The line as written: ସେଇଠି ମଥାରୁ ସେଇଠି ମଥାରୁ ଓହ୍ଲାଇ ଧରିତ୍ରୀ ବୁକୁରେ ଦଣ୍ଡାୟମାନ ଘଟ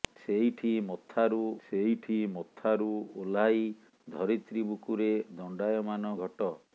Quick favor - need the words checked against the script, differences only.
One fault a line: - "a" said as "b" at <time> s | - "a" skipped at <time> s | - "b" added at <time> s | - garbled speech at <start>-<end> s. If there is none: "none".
none